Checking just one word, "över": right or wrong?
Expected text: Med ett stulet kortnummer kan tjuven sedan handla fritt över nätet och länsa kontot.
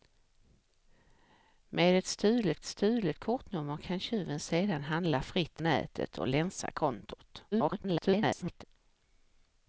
wrong